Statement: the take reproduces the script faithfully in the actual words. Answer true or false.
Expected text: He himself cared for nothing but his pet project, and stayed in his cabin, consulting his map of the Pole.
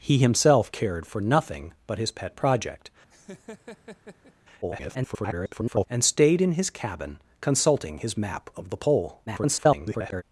false